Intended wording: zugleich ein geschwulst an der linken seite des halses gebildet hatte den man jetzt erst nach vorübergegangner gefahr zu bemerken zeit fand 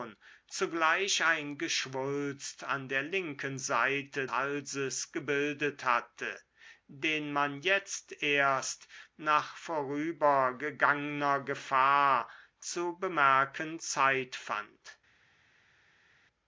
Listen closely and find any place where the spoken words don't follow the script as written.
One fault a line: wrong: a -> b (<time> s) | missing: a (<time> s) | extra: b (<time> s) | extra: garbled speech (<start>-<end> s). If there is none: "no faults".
missing: des (4.3 s)